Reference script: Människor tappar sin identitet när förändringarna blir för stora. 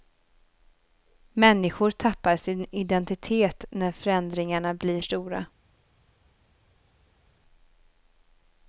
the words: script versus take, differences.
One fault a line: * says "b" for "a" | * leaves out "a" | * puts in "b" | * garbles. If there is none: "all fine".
* leaves out "för"